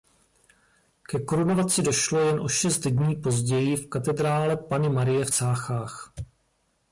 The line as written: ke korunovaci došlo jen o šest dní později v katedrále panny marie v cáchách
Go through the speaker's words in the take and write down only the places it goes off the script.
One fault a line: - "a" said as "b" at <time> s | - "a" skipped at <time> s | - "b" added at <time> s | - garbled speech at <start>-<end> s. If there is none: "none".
none